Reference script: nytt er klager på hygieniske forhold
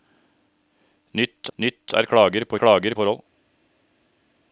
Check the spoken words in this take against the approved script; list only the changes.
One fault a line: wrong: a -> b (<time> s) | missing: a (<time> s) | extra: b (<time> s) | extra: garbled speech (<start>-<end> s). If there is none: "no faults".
extra: nytt (1.6 s)
wrong: hygieniske -> klager (2.6 s)